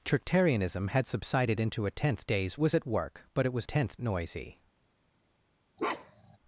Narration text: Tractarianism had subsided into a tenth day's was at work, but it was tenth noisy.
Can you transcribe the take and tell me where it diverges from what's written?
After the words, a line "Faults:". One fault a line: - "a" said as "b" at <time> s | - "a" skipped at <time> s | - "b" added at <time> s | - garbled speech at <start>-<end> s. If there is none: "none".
Tractarianism had subsided into a tenth day's was at work, but it was tenth noisy.
Faults:
none